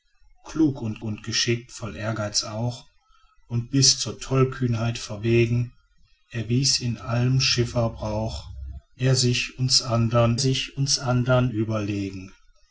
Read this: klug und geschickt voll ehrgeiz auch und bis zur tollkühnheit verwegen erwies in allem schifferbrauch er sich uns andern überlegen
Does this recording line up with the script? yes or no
no